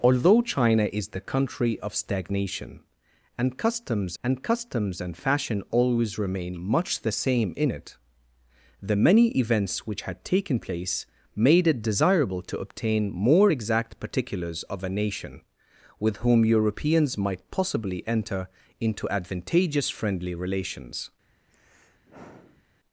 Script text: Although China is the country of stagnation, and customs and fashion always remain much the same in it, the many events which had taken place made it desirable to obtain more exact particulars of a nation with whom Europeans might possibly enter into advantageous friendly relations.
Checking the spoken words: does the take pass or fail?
fail